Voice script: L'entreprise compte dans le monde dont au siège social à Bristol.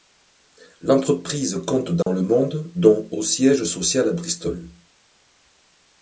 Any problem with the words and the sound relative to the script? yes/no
yes